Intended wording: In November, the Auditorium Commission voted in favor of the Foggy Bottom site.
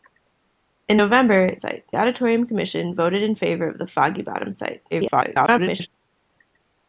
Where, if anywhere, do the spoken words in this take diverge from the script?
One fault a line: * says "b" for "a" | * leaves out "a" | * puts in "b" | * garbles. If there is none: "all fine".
* says "site" for "the"
* garbles